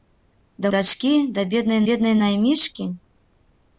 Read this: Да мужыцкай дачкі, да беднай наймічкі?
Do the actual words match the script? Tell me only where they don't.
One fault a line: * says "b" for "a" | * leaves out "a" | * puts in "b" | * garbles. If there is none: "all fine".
* leaves out "мужыцкай"
* puts in "беднай"